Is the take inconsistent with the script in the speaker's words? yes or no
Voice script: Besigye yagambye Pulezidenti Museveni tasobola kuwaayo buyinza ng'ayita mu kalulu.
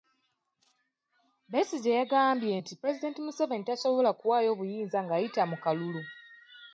yes